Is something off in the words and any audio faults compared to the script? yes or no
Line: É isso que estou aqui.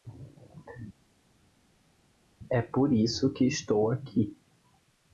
yes